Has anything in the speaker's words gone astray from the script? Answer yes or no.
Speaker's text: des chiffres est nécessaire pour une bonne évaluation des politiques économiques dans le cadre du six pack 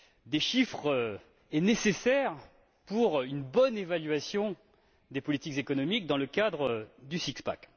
no